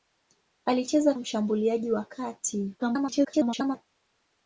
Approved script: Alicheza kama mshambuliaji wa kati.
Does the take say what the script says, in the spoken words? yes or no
no